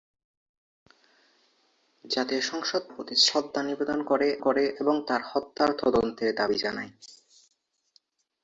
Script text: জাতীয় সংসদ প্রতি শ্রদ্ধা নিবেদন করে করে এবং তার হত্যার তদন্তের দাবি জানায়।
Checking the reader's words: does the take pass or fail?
pass